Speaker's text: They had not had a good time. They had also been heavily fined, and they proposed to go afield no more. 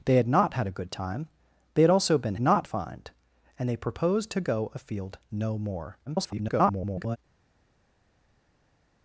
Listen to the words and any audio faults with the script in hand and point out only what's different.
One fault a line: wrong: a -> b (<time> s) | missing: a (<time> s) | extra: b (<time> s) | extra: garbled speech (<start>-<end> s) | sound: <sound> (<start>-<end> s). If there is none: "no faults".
wrong: heavily -> not (2.4 s)
extra: garbled speech (6.1-7.2 s)